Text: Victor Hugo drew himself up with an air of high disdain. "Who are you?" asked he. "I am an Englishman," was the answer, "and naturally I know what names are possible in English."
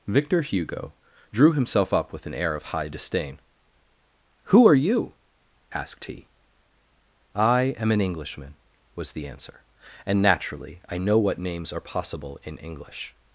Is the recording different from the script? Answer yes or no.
no